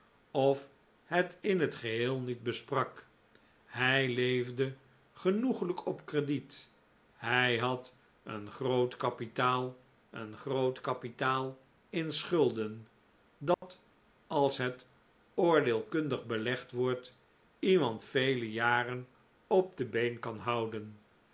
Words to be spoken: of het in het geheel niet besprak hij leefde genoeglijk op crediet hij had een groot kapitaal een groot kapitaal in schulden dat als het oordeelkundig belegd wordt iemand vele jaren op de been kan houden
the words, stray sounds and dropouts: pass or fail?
fail